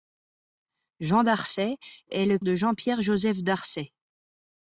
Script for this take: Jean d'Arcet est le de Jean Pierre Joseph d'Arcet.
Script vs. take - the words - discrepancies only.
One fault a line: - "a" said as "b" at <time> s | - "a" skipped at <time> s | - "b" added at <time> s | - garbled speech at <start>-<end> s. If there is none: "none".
none